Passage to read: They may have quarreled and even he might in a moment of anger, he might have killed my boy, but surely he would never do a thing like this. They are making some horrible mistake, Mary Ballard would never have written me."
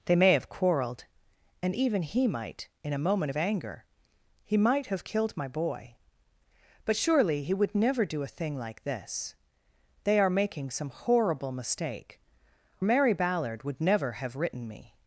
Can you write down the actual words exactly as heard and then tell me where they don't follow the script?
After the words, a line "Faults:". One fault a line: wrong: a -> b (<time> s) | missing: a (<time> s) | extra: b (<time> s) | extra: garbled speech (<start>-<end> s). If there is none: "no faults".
They may have quarreled and even he might in a moment of anger, he might have killed my boy, but surely he would never do a thing like this. They are making some horrible mistake, Mary Ballard would never have written me."
Faults:
no faults